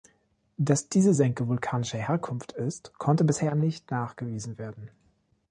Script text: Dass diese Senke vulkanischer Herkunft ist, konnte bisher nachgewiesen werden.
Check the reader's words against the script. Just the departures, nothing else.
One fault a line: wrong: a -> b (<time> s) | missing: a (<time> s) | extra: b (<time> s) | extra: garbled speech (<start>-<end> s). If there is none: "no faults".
extra: nicht (3.5 s)